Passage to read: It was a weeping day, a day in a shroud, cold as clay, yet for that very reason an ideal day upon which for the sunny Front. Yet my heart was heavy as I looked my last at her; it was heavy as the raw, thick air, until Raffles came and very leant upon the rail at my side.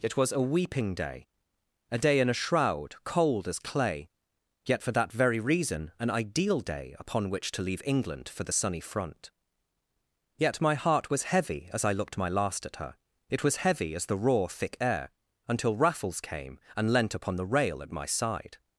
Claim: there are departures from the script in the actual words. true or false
true